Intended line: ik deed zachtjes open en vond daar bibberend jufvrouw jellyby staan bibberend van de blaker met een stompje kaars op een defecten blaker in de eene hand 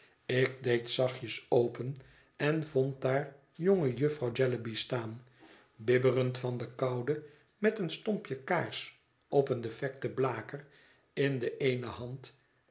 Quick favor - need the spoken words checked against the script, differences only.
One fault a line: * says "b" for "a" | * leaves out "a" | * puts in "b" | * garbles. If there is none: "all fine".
* says "jonge" for "bibberend"
* says "koude" for "blaker"